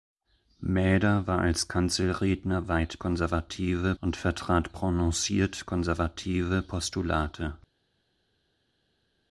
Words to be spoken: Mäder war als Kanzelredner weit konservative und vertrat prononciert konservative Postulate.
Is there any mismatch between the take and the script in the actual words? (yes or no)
no